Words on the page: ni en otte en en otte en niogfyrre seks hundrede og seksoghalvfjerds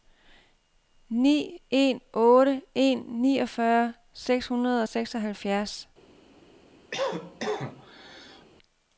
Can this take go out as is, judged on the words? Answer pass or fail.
fail